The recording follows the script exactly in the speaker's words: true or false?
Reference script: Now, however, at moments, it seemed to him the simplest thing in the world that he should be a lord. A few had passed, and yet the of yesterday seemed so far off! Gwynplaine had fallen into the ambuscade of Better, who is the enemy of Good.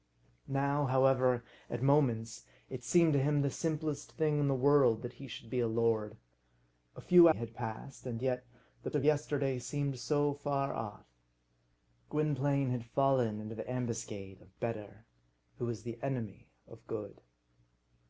true